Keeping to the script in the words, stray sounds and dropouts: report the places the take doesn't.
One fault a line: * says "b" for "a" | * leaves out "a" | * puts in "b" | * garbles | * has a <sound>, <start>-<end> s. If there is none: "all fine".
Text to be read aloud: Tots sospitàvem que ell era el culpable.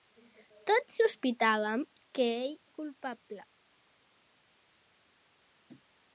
* leaves out "era"